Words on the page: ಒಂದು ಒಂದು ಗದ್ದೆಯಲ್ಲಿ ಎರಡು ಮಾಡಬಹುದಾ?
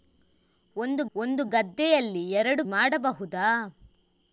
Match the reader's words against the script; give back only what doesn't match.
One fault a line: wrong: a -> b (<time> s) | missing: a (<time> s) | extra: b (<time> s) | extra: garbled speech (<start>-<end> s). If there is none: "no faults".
no faults